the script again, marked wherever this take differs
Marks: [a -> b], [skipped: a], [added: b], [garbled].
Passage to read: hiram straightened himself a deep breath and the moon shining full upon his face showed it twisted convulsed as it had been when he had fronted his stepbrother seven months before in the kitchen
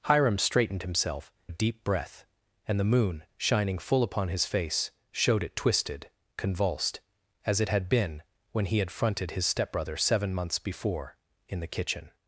hiram straightened himself a deep breath and the moon shining full upon his face showed it twisted convulsed as it had been when he had fronted his stepbrother seven months before in the kitchen